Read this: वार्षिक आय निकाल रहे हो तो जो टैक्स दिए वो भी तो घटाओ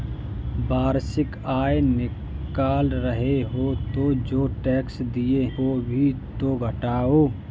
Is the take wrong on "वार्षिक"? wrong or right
right